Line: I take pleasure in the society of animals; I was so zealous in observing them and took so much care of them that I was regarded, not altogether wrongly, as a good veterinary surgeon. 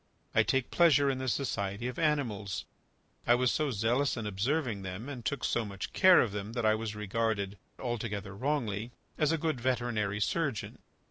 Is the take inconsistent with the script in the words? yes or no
yes